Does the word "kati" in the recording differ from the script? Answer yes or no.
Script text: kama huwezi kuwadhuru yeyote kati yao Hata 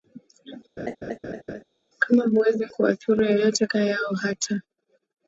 yes